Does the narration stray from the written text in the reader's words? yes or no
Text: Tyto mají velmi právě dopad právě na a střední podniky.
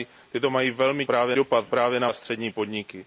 no